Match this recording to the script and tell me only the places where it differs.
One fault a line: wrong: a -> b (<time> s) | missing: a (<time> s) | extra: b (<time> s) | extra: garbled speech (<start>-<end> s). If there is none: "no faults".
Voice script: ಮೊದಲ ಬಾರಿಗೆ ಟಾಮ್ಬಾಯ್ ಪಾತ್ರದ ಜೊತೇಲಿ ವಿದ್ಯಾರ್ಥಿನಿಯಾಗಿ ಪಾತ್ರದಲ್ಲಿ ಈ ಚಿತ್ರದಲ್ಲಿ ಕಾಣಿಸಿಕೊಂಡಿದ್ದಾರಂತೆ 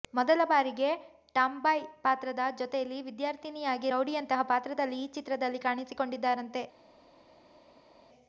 extra: ರೌಡಿಯಂತಹ (3.9 s)